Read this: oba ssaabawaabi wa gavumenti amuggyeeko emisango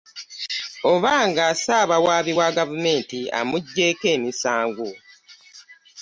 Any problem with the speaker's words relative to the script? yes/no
yes